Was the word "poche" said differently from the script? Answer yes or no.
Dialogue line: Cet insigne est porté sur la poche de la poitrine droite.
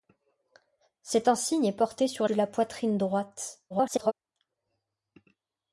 yes